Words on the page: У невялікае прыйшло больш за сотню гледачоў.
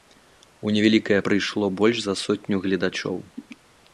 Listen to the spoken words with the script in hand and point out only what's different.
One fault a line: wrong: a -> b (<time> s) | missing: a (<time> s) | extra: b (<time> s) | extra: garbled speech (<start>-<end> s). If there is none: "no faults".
no faults